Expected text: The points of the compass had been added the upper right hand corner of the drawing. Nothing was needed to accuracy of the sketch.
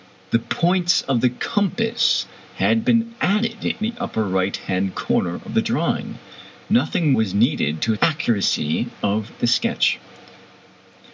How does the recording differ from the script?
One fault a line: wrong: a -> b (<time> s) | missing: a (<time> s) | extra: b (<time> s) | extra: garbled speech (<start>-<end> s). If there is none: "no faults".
no faults